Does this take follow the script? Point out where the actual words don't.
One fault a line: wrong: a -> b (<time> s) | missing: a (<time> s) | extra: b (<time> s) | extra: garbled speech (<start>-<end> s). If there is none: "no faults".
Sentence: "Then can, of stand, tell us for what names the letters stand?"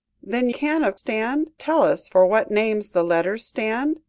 no faults